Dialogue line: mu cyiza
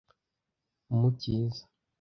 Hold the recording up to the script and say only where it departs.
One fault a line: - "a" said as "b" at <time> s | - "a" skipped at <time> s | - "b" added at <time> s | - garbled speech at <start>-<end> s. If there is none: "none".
none